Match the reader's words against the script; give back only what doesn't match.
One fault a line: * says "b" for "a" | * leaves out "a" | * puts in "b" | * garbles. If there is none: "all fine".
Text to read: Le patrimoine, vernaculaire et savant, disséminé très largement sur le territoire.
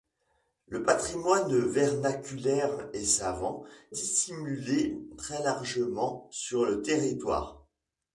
all fine